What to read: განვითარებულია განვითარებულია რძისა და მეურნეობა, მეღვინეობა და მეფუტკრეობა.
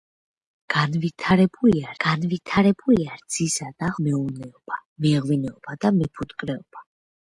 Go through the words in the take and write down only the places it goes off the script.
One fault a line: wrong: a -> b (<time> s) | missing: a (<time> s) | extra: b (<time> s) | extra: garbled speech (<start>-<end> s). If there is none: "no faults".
no faults